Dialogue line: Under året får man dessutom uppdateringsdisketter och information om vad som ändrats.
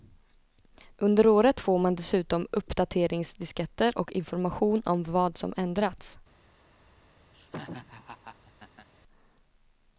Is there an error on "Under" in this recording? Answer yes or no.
no